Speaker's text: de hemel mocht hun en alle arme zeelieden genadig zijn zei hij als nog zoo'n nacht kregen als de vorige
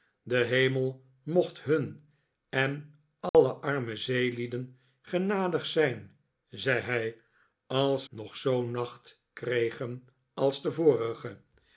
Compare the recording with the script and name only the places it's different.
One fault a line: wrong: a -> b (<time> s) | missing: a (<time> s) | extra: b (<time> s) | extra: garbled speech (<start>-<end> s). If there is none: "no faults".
no faults